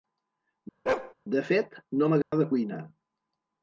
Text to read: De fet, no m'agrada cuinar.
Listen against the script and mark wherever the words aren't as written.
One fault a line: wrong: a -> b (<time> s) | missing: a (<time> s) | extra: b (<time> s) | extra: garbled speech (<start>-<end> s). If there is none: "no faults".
no faults